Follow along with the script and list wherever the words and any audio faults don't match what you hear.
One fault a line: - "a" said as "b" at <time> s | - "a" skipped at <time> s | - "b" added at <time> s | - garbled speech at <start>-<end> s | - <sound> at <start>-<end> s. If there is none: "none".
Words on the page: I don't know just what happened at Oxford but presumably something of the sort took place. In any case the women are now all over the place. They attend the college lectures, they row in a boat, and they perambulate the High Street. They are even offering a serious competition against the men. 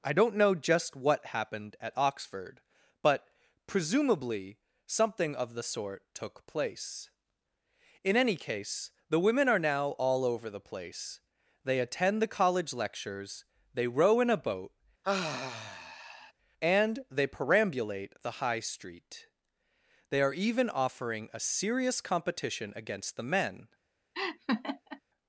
- sigh at 15.0-16.3 s
- laugh at 24.1-25.0 s